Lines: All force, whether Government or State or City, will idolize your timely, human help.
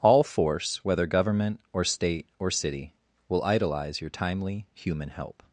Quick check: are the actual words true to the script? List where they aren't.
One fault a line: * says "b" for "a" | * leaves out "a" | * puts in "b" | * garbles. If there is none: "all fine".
all fine